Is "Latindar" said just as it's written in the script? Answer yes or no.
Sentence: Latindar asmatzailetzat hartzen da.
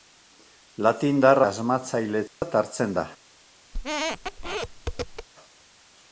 yes